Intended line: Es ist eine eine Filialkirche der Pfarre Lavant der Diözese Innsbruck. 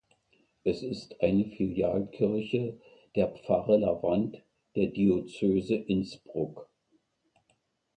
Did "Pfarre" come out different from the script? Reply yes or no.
no